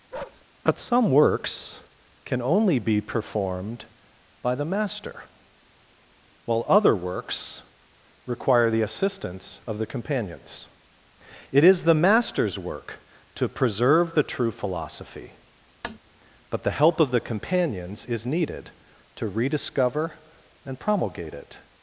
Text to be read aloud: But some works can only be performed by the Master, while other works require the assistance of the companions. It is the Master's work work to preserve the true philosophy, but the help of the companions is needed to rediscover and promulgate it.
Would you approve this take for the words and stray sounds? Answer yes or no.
no